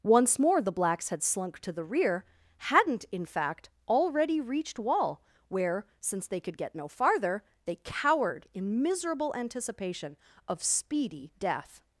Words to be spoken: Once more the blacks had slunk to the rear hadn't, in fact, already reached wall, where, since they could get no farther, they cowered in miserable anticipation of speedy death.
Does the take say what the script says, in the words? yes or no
yes